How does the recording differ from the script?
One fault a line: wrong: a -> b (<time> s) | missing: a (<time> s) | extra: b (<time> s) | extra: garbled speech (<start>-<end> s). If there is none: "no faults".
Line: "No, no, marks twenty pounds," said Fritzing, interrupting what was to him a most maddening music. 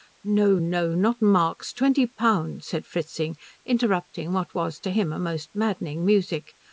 extra: not (0.9 s)